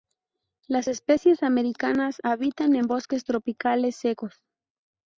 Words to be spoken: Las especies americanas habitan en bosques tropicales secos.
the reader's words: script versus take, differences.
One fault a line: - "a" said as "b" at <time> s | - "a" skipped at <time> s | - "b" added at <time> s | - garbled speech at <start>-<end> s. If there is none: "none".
none